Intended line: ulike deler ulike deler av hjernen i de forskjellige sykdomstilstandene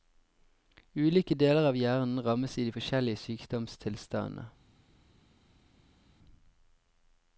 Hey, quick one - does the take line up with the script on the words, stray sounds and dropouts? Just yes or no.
no